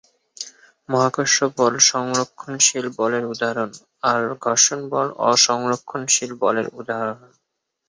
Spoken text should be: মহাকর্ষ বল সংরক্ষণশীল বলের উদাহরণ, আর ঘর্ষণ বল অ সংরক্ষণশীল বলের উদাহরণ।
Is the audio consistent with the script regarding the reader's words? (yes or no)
yes